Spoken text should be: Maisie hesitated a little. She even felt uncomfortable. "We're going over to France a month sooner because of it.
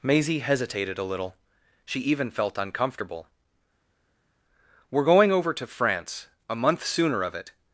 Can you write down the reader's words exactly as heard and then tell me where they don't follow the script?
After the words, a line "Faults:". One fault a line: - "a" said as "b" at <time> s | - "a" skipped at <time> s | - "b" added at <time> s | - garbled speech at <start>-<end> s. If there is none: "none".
Maisie hesitated a little. She even felt uncomfortable. "We're going over to France a month sooner of it.
Faults:
- "because" skipped at 7.2 s